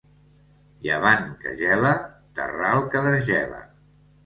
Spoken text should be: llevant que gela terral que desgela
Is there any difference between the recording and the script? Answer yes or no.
no